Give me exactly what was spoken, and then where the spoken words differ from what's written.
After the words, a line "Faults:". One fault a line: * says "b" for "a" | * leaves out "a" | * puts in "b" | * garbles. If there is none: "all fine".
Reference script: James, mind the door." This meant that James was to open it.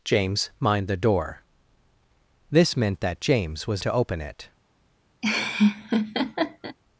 James, mind the door." This meant that James was to open it.
Faults:
all fine